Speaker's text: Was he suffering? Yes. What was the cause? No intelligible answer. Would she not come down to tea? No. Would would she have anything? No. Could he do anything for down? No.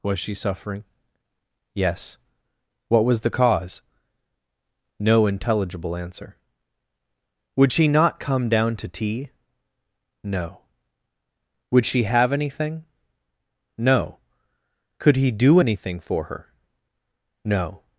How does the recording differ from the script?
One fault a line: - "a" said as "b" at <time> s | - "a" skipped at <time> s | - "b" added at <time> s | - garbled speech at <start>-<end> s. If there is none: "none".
- "he" said as "she" at 0.2 s
- "would" skipped at 11.9 s
- "down" said as "her" at 16.2 s